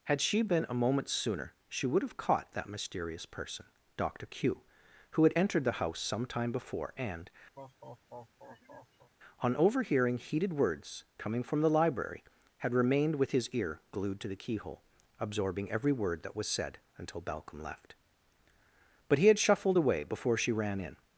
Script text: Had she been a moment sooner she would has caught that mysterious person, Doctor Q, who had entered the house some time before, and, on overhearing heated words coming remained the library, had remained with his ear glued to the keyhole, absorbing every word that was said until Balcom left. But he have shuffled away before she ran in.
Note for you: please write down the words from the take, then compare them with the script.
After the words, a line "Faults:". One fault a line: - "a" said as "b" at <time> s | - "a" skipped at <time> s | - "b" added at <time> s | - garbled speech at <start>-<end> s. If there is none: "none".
Had she been a moment sooner she would have caught that mysterious person, Doctor Q, who had entered the house some time before, and, on overhearing heated words coming from the library, had remained with his ear glued to the keyhole, absorbing every word that was said until Balcom left. But he had shuffled away before she ran in.
Faults:
- "has" said as "have" at 2.0 s
- "remained" said as "from" at 11.4 s
- "have" said as "had" at 19.3 s